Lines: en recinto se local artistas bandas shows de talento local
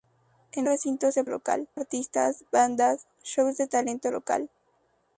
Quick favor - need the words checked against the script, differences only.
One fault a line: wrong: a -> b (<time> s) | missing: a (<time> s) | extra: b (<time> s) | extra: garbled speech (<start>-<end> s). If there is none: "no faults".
no faults